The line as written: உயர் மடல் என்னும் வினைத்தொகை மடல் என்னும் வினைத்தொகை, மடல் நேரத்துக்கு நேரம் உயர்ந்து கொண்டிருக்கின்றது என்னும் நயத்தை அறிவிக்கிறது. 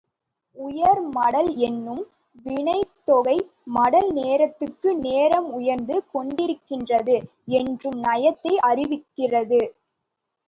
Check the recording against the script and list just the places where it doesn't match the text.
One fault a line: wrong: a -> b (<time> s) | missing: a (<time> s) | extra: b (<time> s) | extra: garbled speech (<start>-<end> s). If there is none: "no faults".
missing: என்னும் வினைத்தொகை மடல் (4.1 s)